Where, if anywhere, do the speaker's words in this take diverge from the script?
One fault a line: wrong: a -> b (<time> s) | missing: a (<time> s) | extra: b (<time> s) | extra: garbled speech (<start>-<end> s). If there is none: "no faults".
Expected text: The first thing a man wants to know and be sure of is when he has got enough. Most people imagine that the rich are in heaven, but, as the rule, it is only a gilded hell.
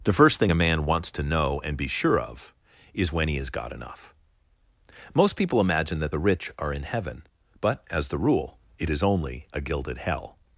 no faults